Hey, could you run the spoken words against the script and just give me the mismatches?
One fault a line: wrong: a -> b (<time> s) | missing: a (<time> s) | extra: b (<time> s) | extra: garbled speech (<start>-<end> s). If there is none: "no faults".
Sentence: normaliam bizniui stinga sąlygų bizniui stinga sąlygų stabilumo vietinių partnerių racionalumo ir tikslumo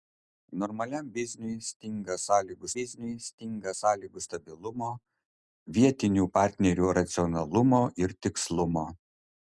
no faults